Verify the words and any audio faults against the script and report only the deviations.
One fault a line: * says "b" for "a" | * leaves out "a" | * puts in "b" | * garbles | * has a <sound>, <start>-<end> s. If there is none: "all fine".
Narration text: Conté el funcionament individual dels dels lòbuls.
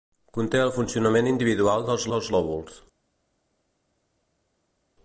all fine